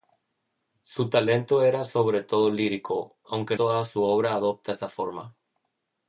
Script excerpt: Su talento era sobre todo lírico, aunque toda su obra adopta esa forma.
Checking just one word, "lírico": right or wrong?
right